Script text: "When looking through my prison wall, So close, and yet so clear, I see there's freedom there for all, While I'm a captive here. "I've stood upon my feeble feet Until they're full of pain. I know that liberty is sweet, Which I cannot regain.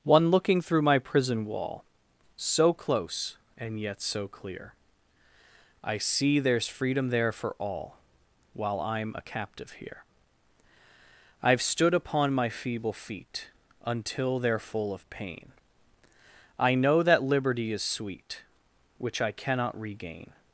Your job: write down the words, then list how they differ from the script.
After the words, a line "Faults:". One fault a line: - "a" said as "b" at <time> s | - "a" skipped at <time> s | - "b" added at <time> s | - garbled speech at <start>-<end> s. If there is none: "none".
"One looking through my prison wall, So close, and yet so clear, I see there's freedom there for all, While I'm a captive here. "I've stood upon my feeble feet Until they're full of pain. I know that liberty is sweet, Which I cannot regain.
Faults:
- "When" said as "One" at 0.0 s